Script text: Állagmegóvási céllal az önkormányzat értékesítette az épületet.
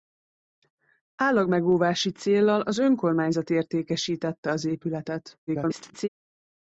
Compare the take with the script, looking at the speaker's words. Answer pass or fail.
fail